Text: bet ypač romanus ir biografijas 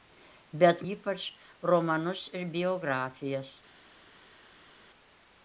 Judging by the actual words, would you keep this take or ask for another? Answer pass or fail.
pass